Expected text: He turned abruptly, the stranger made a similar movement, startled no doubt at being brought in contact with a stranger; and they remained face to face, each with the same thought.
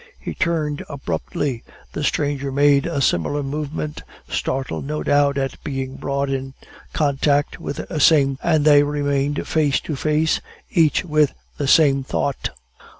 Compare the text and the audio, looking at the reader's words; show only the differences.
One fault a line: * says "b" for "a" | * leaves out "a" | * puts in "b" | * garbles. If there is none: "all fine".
* says "same" for "stranger"